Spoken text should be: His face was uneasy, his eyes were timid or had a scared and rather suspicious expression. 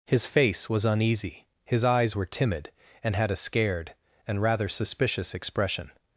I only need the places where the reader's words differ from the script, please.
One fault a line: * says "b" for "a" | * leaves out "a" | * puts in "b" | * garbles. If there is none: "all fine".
* says "and" for "or"